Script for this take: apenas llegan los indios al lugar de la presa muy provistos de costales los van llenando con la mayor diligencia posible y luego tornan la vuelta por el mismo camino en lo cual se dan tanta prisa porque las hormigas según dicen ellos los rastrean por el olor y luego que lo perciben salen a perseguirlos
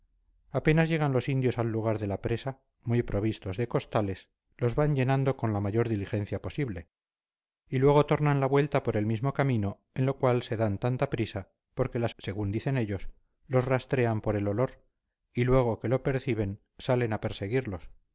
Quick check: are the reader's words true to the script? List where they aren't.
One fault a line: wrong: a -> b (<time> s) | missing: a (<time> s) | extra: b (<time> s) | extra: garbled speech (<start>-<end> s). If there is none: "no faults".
missing: hormigas (12.2 s)